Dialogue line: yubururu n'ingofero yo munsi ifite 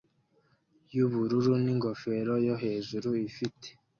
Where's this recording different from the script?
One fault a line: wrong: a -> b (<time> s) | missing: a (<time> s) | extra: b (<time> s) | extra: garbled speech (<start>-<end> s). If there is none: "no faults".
wrong: munsi -> hejuru (2.6 s)